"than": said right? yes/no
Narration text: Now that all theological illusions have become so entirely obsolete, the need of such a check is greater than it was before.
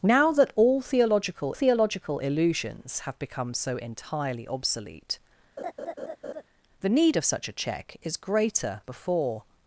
no